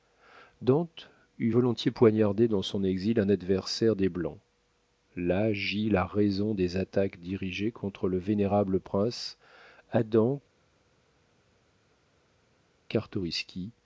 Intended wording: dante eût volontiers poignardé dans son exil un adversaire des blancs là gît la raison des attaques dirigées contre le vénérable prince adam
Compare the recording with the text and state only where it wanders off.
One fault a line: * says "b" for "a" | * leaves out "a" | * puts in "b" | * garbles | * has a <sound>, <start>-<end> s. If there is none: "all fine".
all fine